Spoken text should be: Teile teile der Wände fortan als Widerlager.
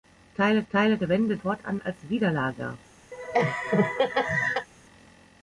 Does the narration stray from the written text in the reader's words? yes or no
no